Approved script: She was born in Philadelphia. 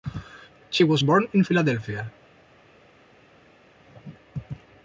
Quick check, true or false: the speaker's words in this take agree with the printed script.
true